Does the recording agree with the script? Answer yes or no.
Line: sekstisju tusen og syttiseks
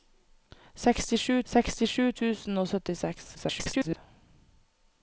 no